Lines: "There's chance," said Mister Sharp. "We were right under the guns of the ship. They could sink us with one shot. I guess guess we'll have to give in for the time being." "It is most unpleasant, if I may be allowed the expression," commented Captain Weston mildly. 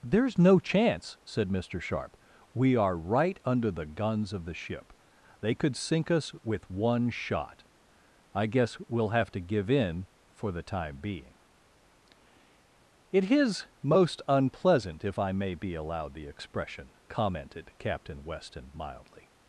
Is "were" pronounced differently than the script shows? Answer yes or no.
yes